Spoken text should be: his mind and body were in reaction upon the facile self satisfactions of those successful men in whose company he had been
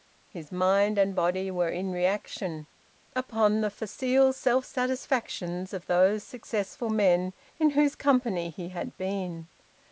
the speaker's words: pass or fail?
pass